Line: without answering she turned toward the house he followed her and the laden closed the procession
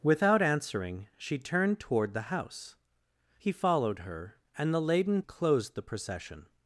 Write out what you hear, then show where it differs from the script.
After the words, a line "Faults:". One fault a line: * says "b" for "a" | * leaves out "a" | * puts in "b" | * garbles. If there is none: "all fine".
without answering she turned toward the house he followed her and the laden closed the procession
Faults:
all fine